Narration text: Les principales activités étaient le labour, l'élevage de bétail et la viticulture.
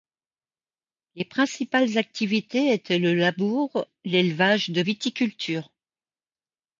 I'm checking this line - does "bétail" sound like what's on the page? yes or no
no